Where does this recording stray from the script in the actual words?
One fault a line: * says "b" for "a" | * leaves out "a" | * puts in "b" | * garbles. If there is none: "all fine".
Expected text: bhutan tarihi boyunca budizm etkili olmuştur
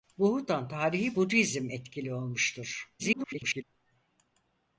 * leaves out "boyunca"
* garbles